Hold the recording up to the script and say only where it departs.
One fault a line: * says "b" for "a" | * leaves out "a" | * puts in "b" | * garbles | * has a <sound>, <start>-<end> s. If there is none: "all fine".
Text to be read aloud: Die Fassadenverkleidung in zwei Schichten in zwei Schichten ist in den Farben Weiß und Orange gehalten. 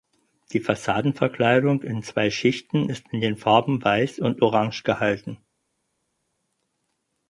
* leaves out "in zwei Schichten"